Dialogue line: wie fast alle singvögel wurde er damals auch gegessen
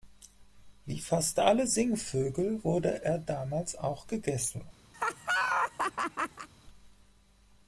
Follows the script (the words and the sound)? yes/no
no